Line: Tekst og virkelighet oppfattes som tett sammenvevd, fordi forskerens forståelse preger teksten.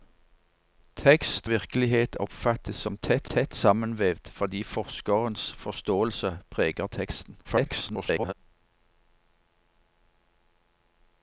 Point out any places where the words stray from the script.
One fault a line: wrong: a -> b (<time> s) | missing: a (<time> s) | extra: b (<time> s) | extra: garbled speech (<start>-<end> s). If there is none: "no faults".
missing: og (1.5 s)
extra: tett (3.3 s)
extra: garbled speech (7.4-8.3 s)